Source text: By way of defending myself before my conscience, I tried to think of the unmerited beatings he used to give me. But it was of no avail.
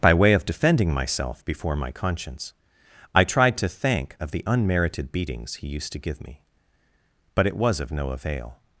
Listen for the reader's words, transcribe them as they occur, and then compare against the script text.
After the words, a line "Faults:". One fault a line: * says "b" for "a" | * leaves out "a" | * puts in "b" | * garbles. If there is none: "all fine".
By way of defending myself before my conscience, I tried to thank of the unmerited beatings he used to give me. But it was of no avail.
Faults:
* says "thank" for "think"